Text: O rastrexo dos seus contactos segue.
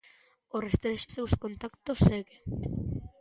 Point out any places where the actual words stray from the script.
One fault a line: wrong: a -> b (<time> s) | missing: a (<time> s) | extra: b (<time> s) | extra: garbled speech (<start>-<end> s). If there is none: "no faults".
missing: dos (1.1 s)